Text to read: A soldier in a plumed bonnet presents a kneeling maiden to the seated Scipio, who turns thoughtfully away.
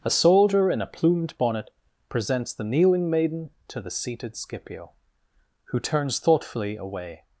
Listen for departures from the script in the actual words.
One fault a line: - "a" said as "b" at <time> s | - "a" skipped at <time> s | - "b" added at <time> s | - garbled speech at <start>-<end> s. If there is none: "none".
- "a" said as "the" at 2.5 s